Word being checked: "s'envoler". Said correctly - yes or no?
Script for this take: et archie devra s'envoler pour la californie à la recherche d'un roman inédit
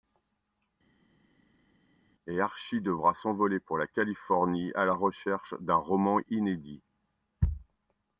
yes